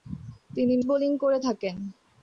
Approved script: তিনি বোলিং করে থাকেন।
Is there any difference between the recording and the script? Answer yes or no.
no